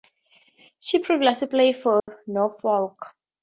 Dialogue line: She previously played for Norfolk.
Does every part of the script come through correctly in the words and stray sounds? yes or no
no